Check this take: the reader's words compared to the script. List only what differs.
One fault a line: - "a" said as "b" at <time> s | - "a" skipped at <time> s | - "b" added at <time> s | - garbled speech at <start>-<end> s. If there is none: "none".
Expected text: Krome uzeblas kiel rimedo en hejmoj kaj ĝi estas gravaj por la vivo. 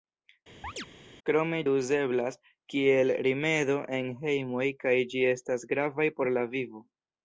none